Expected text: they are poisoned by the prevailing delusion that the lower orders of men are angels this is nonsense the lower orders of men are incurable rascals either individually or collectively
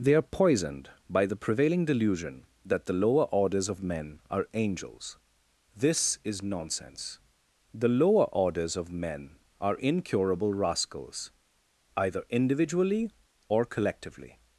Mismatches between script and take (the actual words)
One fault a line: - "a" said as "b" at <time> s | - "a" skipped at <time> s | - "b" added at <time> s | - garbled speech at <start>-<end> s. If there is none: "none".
none